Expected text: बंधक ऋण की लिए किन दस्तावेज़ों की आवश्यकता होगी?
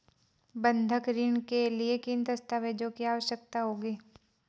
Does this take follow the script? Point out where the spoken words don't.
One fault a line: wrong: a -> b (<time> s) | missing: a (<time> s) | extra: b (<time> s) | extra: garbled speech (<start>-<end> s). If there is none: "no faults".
wrong: की -> के (1.5 s)